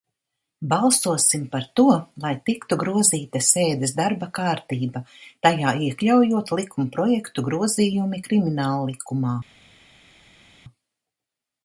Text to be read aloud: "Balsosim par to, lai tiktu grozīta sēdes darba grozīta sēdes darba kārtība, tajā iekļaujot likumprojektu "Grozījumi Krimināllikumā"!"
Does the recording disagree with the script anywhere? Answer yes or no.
yes